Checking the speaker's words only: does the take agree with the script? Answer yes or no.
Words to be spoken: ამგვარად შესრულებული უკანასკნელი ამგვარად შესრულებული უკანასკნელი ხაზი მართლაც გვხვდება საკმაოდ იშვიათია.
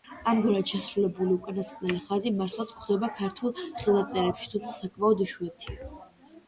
no